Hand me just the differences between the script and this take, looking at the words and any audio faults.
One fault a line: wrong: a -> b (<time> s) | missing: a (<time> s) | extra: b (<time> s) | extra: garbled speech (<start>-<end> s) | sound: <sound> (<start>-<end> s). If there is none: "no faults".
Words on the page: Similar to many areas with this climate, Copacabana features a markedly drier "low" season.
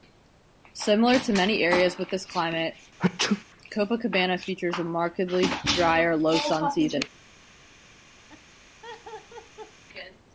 sound: sneeze (3.0-3.4 s)
extra: sun (6.4 s)
sound: laugh (8.3-9.8 s)